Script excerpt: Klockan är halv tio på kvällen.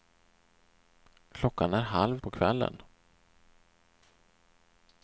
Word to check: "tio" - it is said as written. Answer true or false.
false